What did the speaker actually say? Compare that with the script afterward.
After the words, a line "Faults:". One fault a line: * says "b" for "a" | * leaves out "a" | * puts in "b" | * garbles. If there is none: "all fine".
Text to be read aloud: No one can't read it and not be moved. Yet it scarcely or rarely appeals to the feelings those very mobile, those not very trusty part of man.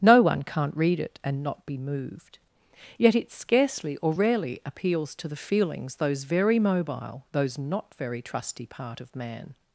No one can't read it and not be moved. Yet it scarcely or rarely appeals to the feelings those very mobile, those not very trusty part of man.
Faults:
all fine